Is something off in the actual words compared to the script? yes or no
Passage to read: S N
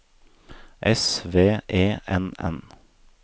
yes